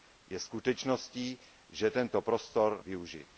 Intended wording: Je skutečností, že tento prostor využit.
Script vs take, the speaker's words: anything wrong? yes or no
no